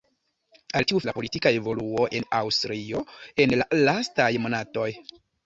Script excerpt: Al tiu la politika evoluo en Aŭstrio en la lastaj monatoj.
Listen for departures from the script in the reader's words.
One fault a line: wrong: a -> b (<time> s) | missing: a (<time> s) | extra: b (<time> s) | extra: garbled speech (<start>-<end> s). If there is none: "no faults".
no faults